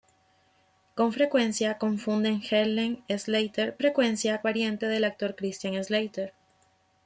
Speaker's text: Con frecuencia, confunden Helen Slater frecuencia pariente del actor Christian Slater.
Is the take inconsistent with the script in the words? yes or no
no